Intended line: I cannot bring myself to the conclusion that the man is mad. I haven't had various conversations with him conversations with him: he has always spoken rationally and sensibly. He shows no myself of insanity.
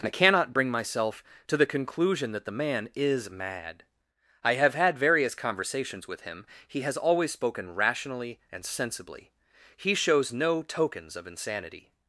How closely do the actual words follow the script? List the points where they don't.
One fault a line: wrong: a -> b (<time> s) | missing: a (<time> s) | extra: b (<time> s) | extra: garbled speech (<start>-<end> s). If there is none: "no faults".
wrong: haven't -> have (4.5 s)
missing: conversations with him (6.5 s)
wrong: myself -> tokens (10.6 s)